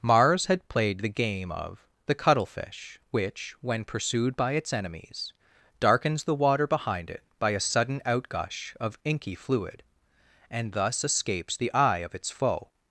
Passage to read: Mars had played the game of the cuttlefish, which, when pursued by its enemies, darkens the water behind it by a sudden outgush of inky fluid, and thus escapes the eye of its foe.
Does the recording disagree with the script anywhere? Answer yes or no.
no